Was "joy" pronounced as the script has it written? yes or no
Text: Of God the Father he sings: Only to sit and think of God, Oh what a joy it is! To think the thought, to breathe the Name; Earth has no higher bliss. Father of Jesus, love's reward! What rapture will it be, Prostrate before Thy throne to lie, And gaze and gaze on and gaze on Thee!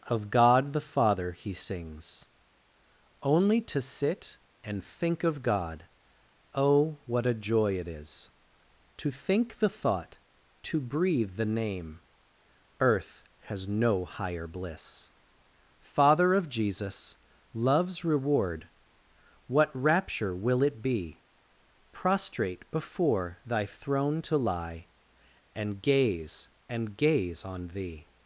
yes